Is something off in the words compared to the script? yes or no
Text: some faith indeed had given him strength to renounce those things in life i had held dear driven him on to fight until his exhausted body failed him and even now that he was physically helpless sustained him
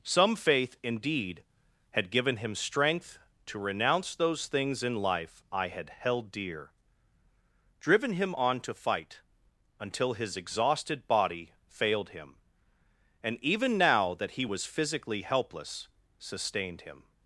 no